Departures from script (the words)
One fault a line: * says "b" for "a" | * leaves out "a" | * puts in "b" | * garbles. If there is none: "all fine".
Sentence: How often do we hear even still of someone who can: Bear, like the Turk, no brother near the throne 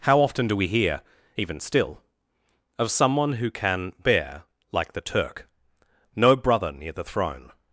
all fine